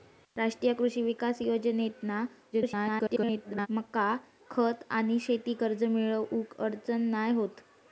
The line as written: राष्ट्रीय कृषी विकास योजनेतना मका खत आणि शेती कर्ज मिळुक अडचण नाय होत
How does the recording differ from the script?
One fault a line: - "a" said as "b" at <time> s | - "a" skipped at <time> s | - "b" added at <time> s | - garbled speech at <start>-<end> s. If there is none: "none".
- garbled speech at 2.5-3.7 s